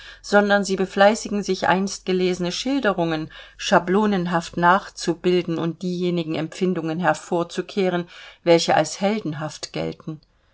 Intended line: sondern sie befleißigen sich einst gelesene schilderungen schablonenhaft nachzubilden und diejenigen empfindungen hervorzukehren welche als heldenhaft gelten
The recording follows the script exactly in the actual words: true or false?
true